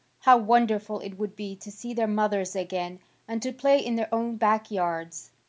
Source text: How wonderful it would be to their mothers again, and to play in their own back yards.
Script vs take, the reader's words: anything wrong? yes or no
yes